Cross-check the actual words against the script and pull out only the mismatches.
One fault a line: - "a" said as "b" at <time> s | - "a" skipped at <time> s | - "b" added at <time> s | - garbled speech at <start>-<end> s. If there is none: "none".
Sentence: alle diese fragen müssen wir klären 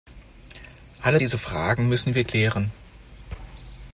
none